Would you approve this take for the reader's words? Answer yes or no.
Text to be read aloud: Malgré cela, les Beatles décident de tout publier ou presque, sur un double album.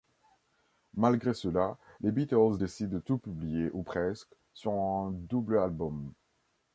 yes